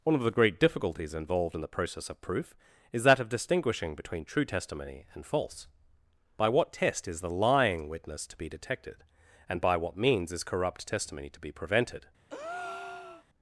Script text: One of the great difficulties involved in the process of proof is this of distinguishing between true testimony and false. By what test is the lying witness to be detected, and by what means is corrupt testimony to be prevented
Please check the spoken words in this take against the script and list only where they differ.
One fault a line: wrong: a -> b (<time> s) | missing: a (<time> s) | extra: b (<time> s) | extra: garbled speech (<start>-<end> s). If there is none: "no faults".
wrong: this -> that (3.0 s)